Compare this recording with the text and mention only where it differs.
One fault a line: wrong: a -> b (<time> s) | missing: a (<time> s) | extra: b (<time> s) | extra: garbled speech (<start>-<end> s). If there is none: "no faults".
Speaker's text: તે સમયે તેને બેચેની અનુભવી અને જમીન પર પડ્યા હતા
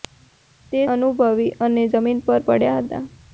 missing: સમયે તેને બેચેની (0.8 s)